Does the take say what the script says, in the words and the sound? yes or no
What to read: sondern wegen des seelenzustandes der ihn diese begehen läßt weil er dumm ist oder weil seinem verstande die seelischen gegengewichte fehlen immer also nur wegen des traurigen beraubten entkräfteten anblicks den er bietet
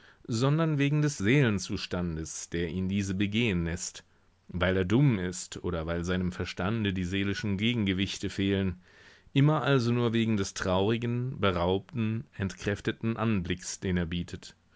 yes